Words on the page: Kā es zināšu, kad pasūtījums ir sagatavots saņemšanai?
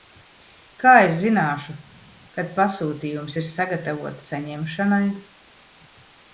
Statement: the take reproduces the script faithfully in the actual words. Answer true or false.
true